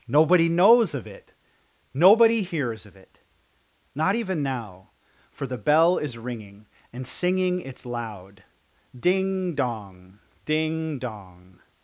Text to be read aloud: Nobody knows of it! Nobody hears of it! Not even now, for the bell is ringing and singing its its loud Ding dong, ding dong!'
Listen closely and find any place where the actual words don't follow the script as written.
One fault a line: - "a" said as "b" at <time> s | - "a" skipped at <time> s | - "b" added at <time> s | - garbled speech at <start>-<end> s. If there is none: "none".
- "its" skipped at 7.9 s